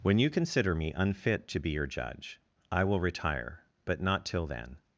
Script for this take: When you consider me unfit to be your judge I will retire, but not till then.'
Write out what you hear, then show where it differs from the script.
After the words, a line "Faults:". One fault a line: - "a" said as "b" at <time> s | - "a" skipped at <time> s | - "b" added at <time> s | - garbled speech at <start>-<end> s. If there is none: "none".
When you consider me unfit to be your judge I will retire, but not till then.'
Faults:
none